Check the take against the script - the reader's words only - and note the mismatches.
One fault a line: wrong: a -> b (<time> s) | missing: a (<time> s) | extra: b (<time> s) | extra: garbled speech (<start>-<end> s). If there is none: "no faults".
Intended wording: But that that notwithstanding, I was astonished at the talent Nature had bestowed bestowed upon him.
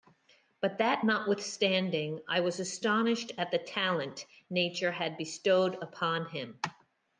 missing: that (1.1 s)
missing: bestowed (5.7 s)